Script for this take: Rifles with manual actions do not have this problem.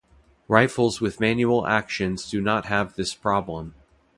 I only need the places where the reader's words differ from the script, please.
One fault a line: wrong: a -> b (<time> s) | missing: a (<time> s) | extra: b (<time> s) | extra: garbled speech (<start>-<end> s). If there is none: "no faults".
no faults